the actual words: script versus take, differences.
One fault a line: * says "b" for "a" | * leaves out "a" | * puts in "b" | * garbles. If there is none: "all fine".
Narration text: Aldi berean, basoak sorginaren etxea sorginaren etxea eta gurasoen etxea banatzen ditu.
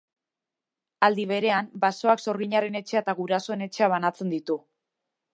* leaves out "sorginaren etxea"